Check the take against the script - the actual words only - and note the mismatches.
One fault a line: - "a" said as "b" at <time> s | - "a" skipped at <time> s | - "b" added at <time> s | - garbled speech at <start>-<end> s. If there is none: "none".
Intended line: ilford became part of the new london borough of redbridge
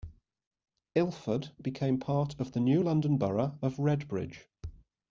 none